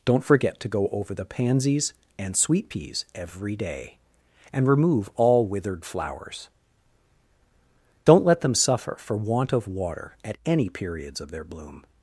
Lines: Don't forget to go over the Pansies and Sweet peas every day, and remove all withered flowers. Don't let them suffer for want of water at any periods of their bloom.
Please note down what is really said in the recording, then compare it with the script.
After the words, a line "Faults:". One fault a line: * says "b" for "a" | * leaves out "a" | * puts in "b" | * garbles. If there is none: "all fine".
Don't forget to go over the Pansies and Sweet peas every day, and remove all withered flowers. Don't let them suffer for want of water at any periods of their bloom.
Faults:
all fine